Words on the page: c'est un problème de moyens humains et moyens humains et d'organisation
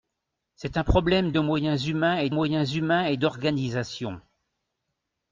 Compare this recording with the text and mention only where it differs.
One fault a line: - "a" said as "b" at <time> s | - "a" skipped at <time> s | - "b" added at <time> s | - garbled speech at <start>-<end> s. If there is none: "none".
none